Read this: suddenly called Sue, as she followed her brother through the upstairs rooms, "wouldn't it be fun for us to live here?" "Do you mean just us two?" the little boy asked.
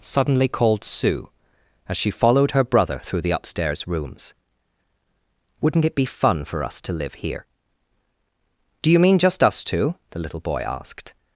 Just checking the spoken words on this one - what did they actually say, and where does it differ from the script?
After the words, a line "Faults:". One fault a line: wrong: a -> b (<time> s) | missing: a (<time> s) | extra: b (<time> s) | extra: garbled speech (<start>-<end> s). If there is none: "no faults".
suddenly called Sue, as she followed her brother through the upstairs rooms, "wouldn't it be fun for us to live here?" "Do you mean just us two?" the little boy asked.
Faults:
no faults